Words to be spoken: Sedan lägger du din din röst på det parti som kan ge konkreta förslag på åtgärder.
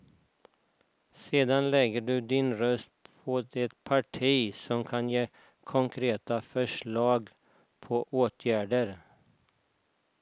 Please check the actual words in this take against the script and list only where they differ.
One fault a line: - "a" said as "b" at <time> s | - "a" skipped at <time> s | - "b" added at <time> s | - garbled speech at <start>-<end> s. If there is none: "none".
- "din" skipped at 2.5 s